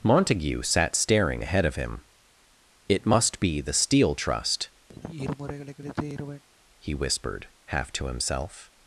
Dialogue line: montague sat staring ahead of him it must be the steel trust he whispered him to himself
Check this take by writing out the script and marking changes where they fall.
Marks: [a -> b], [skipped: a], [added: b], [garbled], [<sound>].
montague sat staring ahead of him it must be the steel trust [sigh] he whispered [him -> half] to himself